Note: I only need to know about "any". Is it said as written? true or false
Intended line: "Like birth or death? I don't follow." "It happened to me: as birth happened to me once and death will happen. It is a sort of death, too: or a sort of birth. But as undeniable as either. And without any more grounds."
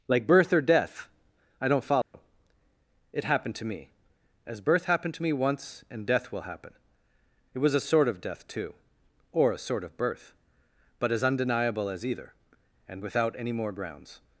true